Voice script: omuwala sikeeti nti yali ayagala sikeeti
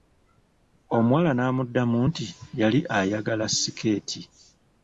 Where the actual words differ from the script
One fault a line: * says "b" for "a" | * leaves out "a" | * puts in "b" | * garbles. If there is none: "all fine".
* says "n'amuddamu" for "sikeeti"